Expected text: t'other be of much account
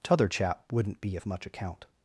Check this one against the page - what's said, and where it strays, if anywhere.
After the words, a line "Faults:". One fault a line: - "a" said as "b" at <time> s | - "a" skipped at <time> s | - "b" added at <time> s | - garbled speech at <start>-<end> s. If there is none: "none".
t'other chap wouldn't be of much account
Faults:
- "chap wouldn't" added at 0.3 s